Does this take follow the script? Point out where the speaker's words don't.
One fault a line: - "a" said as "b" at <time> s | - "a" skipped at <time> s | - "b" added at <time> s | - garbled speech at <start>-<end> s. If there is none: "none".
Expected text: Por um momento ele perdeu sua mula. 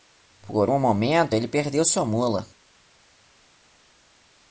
none